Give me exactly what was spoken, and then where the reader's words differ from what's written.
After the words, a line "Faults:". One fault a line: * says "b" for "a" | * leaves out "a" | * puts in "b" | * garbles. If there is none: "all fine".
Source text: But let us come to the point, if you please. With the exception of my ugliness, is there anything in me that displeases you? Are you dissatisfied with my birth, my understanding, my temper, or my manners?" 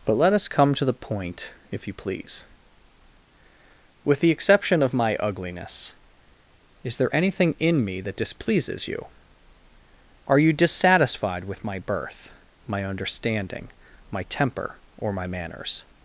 But let us come to the point, if you please. With the exception of my ugliness, is there anything in me that displeases you? Are you dissatisfied with my birth, my understanding, my temper, or my manners?"
Faults:
all fine